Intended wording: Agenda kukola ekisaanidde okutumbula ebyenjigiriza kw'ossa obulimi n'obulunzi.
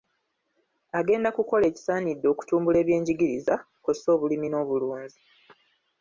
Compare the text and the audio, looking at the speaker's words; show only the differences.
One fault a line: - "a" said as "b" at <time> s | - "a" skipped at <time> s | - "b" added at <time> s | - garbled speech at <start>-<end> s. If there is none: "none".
none